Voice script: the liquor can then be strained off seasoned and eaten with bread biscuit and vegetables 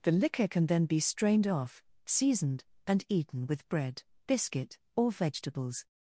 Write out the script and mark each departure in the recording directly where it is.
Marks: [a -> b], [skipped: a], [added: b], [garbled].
the liquor can then be strained off seasoned and eaten with bread biscuit [and -> or] vegetables